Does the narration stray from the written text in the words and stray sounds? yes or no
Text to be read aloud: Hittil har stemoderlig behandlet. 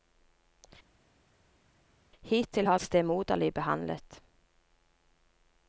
no